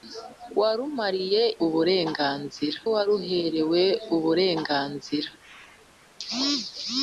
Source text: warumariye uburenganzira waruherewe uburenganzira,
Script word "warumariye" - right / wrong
right